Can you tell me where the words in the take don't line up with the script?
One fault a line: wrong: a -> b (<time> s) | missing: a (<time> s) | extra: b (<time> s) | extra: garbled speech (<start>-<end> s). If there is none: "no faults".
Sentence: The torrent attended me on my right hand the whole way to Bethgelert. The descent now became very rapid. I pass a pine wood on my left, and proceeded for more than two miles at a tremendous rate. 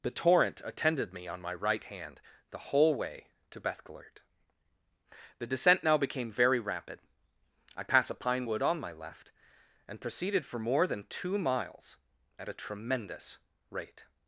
no faults